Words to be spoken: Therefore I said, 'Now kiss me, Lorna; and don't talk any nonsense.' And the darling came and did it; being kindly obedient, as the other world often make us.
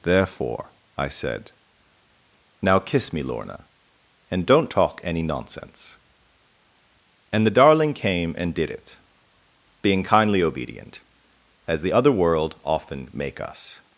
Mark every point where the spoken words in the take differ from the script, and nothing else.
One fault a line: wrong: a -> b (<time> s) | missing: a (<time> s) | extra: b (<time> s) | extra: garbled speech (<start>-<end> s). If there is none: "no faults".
no faults